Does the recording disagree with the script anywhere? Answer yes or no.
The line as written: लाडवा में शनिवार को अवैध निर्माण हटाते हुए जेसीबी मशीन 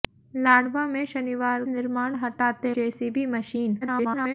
yes